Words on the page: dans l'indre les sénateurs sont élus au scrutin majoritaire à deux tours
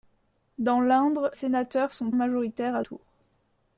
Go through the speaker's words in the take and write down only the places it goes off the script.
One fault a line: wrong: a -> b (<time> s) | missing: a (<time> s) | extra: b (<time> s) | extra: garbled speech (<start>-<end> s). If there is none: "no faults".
missing: les (1.3 s)
missing: élus au scrutin (2.1 s)
missing: deux (2.8 s)